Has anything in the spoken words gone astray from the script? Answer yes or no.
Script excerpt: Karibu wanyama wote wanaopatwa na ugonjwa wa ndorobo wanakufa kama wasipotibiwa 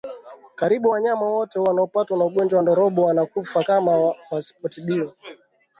no